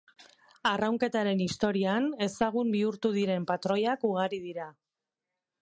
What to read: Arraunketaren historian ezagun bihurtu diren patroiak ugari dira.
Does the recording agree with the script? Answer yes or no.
yes